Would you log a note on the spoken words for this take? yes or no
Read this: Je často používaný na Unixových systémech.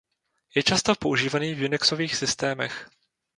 yes